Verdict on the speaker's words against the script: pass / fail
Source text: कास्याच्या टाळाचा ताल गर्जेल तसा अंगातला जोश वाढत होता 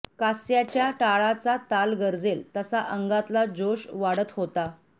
pass